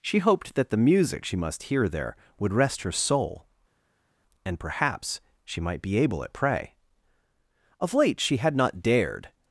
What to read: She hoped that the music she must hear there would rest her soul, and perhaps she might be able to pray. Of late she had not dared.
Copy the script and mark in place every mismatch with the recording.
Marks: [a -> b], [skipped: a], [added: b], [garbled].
She hoped that the music she must hear there would rest her soul, and perhaps she might be able [to -> at] pray. Of late she had not dared.